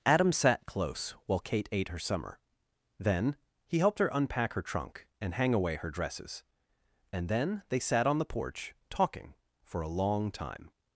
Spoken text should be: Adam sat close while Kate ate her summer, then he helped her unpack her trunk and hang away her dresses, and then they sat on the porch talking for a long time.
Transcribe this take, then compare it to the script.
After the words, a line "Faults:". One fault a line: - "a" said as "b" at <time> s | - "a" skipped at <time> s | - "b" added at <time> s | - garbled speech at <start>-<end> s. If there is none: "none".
Adam sat close while Kate ate her summer, then he helped her unpack her trunk and hang away her dresses, and then they sat on the porch talking for a long time.
Faults:
none